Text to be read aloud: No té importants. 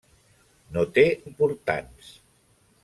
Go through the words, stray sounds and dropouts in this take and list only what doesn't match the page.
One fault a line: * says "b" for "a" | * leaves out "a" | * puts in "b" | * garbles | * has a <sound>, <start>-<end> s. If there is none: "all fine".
all fine